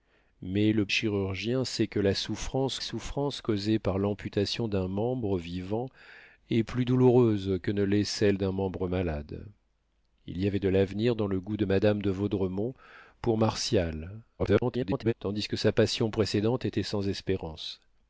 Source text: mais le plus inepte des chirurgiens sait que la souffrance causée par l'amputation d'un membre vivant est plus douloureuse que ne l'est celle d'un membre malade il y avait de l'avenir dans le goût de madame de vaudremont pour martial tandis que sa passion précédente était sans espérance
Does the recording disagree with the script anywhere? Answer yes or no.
yes